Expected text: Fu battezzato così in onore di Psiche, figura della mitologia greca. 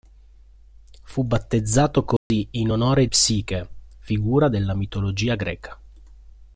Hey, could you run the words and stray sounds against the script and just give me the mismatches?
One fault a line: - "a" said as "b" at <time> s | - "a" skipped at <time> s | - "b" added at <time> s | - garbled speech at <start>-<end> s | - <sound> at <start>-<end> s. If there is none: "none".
- dropout at 2.2-2.3 s
- "di" skipped at 3.1 s